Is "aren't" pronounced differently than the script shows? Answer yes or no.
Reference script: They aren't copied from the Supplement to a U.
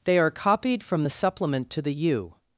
yes